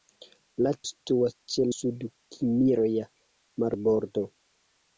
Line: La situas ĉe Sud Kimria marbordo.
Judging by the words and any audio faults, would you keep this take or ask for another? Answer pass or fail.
pass